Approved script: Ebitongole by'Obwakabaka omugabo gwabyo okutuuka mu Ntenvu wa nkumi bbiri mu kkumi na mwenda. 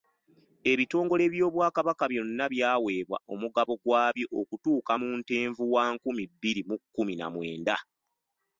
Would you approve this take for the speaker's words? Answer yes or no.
no